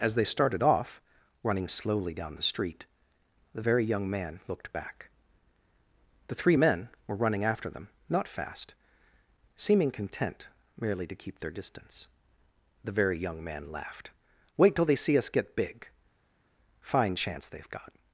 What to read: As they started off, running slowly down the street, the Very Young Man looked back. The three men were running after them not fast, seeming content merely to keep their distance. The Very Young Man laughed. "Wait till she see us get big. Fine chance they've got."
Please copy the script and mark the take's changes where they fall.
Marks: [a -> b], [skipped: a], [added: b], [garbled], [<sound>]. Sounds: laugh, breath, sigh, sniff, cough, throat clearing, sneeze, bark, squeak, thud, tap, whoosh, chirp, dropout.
As they started off, running slowly down the street, the Very Young Man looked back. The three men were running after them not fast, seeming content merely to keep their distance. The Very Young Man laughed. "Wait till [she -> they] see us get big. Fine chance they've got."